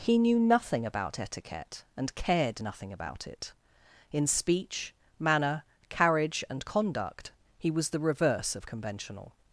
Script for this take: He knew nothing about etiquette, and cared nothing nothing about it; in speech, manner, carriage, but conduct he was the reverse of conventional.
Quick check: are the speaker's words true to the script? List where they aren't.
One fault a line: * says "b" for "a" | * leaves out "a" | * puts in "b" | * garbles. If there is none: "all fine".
* leaves out "nothing"
* says "and" for "but"